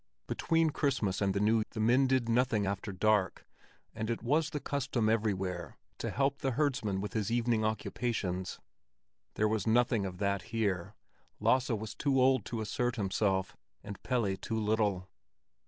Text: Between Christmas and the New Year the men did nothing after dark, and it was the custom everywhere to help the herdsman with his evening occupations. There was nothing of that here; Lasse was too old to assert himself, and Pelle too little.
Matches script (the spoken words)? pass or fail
fail